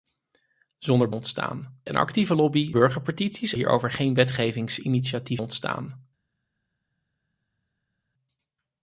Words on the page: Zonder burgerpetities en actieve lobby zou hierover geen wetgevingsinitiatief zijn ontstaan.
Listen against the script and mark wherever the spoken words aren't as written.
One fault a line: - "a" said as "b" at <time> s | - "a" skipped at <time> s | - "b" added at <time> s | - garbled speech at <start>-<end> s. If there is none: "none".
- "burgerpetities" said as "ontstaan" at 1.1 s
- "zou" said as "burgerpetities" at 2.7 s
- "zijn" skipped at 5.4 s